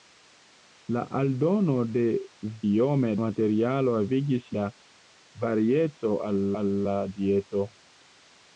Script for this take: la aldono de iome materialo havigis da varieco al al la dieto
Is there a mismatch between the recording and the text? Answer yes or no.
no